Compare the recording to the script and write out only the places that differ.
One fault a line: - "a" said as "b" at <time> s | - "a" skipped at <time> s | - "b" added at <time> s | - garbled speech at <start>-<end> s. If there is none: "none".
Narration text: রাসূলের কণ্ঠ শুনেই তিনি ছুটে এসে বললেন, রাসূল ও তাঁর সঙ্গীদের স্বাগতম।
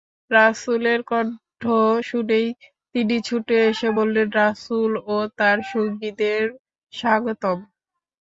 none